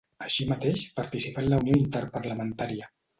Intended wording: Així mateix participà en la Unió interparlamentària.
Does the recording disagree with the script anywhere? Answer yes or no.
no